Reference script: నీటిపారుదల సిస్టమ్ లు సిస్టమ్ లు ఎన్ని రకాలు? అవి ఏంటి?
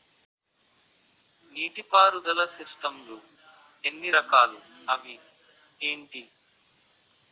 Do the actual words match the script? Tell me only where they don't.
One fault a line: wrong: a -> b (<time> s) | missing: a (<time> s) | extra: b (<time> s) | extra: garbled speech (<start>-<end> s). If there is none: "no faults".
missing: సిస్టమ్ లు (3.2 s)